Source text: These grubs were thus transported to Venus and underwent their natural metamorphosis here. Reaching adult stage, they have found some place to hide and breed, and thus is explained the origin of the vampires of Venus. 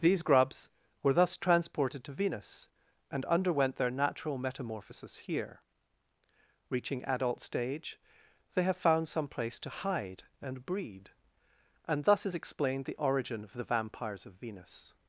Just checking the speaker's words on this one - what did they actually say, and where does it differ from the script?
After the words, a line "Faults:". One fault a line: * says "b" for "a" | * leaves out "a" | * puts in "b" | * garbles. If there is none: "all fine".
These grubs were thus transported to Venus and underwent their natural metamorphosis here. Reaching adult stage, they have found some place to hide and breed, and thus is explained the origin of the vampires of Venus.
Faults:
all fine